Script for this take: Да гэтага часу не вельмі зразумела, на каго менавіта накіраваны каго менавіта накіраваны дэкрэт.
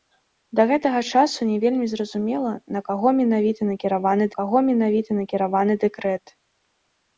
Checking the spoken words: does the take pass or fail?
pass